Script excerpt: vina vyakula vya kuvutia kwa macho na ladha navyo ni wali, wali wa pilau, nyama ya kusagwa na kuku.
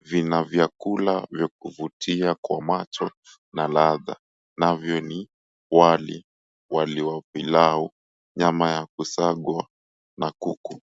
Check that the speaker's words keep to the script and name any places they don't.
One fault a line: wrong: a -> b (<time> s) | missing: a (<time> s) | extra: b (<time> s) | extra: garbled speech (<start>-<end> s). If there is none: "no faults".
no faults